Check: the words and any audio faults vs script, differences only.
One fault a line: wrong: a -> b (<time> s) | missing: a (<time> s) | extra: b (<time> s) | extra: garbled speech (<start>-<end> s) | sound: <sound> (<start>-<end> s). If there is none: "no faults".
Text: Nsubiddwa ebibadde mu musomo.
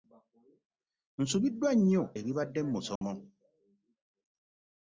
extra: nnyo (1.8 s)
sound: dropout (3.0-3.0 s)